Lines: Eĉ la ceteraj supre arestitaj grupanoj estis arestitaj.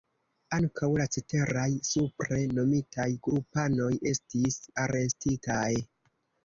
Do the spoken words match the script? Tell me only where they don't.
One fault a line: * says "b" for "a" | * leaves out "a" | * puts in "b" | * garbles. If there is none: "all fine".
* says "Ankaŭ" for "Eĉ"
* says "nomitaj" for "arestitaj"